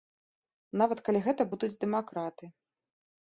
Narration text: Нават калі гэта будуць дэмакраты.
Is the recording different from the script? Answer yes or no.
no